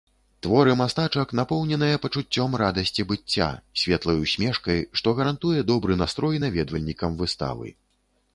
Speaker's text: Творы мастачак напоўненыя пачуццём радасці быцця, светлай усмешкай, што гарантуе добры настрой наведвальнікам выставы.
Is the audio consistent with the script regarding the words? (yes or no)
yes